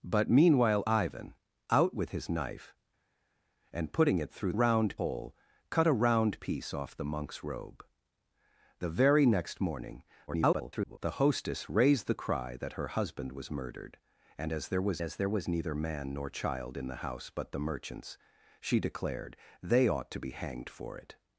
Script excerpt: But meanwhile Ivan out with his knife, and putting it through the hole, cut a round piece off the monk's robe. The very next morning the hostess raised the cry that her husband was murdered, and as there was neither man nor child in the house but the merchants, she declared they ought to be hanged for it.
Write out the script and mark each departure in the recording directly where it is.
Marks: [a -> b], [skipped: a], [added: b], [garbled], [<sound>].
But meanwhile Ivan out with his knife, and putting it through [the -> round] hole, cut a round piece off the monk's robe. The very next morning [garbled] the hostess raised the cry that her husband was murdered, and as there was [added: as there was] neither man nor child in the house but the merchants, she declared they ought to be hanged for it.